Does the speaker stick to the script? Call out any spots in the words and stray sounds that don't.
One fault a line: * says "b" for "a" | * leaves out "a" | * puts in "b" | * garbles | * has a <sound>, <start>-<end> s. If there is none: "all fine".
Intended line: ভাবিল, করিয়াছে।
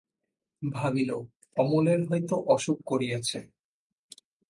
* puts in "অমলের হয়তো অসুখ"